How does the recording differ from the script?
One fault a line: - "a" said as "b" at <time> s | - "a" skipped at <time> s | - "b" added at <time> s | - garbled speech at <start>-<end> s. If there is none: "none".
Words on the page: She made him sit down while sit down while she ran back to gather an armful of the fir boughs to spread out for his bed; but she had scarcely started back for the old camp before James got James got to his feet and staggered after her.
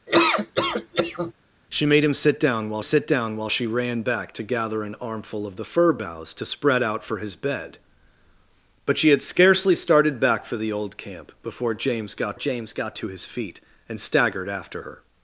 none